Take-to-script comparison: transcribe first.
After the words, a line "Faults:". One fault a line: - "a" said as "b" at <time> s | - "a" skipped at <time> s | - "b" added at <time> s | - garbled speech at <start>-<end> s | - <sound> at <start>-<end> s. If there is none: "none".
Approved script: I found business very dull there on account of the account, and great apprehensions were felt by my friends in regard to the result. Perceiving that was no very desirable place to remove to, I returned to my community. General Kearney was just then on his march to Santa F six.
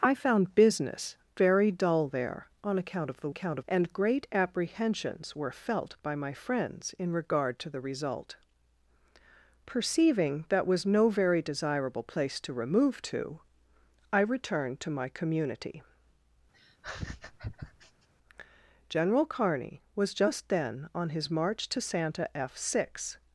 I found business very dull there on account of the account, and great apprehensions were felt by my friends in regard to the result. Perceiving that was no very desirable place to remove to, I returned to my community. General Kearney was just then on his march to Santa F six.
Faults:
- laugh at 16.5-18.1 s